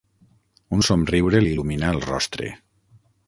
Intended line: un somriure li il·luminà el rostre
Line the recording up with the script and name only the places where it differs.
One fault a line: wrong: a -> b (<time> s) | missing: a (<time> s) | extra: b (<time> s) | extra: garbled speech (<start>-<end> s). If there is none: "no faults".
no faults